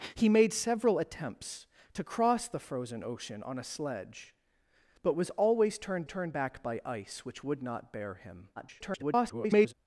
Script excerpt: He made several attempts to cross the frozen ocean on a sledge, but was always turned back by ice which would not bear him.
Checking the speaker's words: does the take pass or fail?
fail